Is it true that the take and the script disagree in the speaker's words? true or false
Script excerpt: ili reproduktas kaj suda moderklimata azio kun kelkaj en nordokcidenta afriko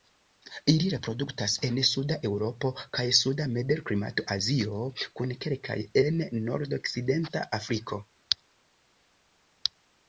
true